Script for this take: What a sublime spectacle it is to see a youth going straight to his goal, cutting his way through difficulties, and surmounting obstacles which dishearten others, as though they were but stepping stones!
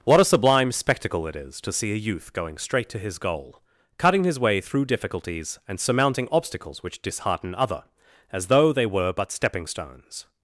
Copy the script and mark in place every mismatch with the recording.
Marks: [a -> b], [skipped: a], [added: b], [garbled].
What a sublime spectacle it is to see a youth going straight to his goal, cutting his way through difficulties, and surmounting obstacles which dishearten [others, -> other] as though they were but stepping stones!